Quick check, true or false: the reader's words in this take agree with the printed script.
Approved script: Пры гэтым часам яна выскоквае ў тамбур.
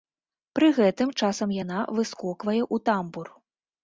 true